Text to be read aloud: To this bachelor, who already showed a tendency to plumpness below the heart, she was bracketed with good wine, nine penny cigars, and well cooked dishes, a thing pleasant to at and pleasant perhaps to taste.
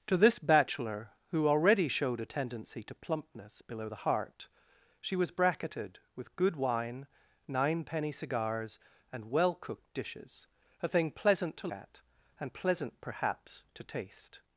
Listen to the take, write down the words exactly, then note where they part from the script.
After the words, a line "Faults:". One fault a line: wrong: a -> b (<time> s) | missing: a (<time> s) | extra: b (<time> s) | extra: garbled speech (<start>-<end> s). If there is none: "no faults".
To this bachelor, who already showed a tendency to plumpness below the heart, she was bracketed with good wine, nine penny cigars, and well cooked dishes, a thing pleasant to at and pleasant perhaps to taste.
Faults:
no faults